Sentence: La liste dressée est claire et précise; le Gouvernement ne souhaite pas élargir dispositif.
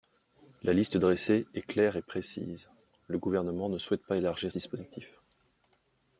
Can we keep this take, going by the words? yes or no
yes